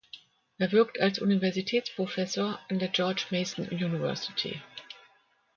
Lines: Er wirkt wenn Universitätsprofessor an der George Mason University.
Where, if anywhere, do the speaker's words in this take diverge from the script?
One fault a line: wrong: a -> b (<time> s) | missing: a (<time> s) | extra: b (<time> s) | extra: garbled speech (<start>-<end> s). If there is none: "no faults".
wrong: wenn -> als (1.0 s)